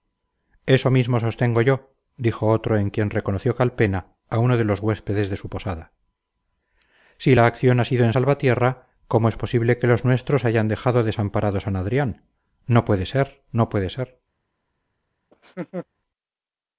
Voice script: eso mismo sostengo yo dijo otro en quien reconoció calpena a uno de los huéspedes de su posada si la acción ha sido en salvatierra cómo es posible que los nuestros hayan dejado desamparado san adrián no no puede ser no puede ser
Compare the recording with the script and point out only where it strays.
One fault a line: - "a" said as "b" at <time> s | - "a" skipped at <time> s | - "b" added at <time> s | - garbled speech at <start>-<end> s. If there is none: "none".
- "no" skipped at 12.8 s